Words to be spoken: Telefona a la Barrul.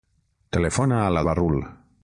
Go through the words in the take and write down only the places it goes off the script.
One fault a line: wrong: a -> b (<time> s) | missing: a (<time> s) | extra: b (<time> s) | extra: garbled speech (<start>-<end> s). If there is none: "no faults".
no faults